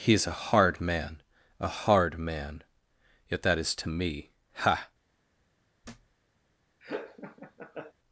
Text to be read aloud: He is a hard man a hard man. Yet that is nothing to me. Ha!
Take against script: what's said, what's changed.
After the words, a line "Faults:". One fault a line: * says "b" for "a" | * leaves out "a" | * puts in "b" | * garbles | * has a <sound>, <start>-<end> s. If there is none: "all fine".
He is a hard man a hard man. Yet that is to me. Ha!
Faults:
* leaves out "nothing"
* has a thud, 5.8-6.2 s
* has a laugh, 6.8-7.9 s